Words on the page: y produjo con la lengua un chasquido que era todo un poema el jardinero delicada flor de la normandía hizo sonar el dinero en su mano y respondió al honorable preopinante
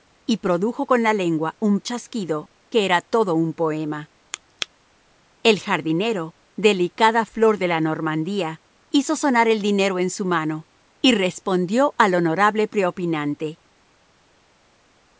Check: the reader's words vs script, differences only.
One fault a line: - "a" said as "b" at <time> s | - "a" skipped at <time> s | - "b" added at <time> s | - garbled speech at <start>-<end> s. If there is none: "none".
none